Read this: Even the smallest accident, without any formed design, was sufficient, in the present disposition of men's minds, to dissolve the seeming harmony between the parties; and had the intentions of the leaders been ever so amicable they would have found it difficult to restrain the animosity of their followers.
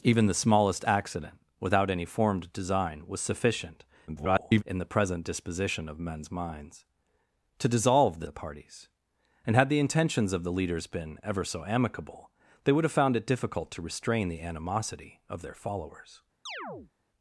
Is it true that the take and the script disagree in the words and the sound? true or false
true